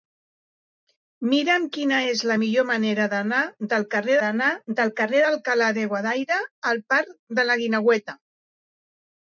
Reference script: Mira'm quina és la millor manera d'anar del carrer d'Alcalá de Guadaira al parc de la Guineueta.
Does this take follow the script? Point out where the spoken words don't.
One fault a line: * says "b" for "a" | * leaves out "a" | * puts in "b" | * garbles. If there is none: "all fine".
* puts in "d'anar del carrer"